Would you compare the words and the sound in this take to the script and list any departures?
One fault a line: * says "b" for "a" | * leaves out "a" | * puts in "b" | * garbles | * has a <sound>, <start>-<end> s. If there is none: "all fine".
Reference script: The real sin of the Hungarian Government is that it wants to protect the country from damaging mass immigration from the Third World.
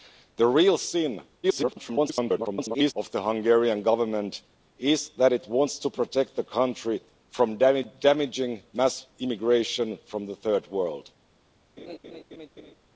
* garbles
* has a laugh, 11.8-12.7 s